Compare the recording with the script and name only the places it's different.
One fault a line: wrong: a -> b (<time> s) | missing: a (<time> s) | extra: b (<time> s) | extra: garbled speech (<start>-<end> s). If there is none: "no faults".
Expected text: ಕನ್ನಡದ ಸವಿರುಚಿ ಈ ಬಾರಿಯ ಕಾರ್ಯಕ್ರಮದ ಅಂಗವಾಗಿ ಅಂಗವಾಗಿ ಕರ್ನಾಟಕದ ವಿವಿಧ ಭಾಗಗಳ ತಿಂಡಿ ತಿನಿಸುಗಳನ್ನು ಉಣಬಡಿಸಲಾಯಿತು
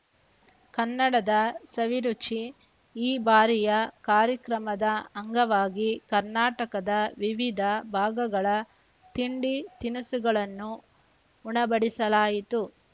missing: ಅಂಗವಾಗಿ (5.9 s)